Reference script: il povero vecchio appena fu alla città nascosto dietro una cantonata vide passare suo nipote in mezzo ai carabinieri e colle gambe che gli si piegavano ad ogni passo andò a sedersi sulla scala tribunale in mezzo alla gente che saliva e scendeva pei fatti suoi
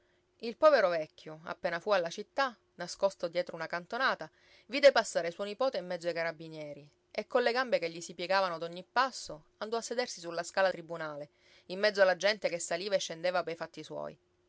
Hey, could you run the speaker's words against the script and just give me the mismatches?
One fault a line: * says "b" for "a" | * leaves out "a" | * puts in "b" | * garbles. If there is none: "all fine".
all fine